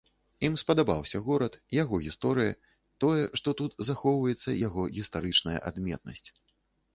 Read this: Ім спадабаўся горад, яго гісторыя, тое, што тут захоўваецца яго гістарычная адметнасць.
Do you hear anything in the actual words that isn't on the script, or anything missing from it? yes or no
no